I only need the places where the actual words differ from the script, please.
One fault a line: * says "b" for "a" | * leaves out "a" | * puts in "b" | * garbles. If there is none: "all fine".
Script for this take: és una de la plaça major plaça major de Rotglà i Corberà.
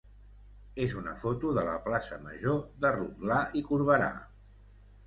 * puts in "foto"
* leaves out "plaça major"